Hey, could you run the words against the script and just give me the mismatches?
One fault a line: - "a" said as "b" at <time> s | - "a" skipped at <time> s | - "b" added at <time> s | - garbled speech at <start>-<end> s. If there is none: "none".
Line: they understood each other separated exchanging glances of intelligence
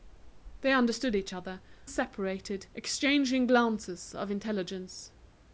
none